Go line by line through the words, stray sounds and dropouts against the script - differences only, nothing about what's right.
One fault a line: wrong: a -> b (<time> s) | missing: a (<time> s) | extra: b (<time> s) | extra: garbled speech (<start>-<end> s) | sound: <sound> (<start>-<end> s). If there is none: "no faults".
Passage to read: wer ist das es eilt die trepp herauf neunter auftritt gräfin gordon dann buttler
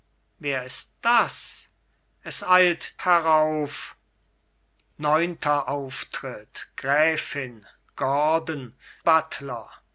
missing: die trepp (3.0 s)
missing: dann (8.7 s)